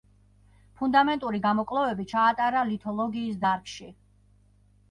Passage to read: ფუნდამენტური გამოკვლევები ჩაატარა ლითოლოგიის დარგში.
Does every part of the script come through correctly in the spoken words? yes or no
yes